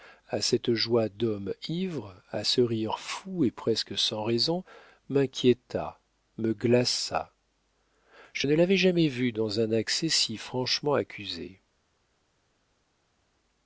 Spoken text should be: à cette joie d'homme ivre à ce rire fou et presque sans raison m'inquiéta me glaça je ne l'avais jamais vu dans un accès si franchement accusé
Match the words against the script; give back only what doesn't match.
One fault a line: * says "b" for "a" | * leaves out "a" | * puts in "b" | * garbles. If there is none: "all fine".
all fine